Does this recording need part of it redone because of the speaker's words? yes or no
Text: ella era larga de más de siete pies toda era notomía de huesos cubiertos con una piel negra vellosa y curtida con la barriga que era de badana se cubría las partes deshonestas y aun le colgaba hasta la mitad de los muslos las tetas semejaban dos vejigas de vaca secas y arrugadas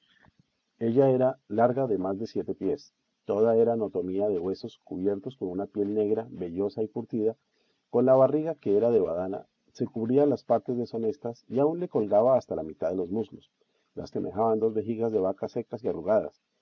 yes